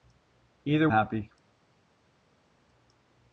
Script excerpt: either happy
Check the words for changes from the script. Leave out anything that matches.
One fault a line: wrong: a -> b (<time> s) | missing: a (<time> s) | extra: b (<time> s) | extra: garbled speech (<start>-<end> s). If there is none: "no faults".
no faults